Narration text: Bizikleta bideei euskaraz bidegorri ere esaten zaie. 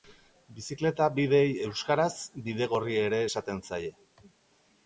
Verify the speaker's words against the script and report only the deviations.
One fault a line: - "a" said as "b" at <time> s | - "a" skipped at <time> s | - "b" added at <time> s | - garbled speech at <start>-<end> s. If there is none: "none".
none